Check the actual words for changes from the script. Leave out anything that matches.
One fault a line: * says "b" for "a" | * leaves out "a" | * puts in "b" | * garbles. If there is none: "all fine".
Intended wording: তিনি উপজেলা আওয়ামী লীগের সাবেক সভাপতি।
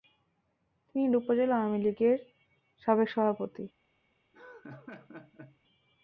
all fine